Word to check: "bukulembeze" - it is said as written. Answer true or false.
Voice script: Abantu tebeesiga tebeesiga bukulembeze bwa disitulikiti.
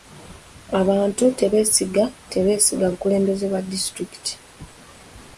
true